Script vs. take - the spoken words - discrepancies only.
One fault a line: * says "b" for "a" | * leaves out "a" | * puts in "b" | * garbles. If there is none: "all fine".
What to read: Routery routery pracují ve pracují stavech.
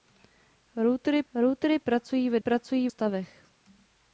all fine